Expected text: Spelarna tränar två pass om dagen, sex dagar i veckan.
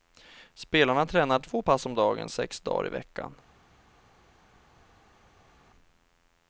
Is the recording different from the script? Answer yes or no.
no